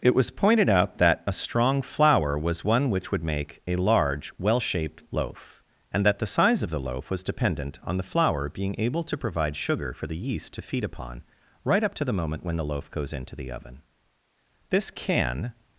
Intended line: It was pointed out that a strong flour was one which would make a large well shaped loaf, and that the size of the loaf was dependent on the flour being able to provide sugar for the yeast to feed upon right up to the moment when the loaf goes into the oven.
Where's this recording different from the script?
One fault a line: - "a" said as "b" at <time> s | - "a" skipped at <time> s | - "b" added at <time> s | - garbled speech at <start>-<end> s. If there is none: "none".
- "This can" added at 14.7 s